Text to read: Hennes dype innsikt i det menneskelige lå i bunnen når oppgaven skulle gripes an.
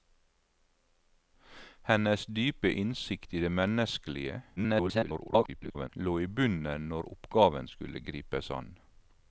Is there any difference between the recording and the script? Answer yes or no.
yes